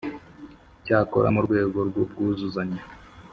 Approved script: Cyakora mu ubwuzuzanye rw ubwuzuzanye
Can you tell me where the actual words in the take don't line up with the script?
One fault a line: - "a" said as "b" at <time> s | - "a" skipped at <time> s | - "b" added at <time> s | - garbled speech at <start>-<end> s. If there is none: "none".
- "ubwuzuzanye" said as "rwego" at 1.4 s